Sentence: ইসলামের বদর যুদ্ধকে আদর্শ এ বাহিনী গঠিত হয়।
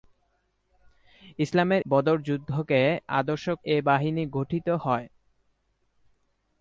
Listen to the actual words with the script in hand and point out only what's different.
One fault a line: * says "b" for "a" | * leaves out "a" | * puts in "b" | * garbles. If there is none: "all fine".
all fine